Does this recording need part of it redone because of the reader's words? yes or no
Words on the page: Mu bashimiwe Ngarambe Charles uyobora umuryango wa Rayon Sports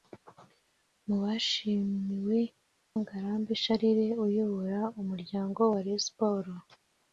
no